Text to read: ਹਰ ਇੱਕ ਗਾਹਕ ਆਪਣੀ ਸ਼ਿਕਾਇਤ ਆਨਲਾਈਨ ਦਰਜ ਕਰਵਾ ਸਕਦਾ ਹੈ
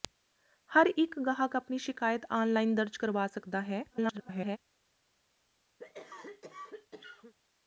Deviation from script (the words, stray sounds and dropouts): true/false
true